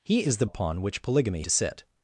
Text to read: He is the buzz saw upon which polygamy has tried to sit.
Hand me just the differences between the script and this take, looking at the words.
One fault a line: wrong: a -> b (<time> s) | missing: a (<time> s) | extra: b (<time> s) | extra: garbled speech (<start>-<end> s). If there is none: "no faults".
missing: buzz saw (0.5 s)
missing: has tried (1.4 s)